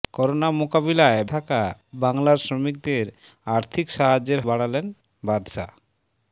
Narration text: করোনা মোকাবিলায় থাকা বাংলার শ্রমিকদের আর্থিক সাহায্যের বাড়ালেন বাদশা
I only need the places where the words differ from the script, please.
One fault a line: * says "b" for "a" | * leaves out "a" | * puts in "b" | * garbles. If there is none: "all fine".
all fine